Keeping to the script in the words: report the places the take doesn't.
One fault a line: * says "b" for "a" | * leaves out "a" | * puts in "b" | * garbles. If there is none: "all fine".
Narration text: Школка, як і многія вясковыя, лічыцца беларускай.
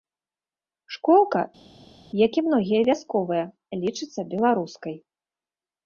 all fine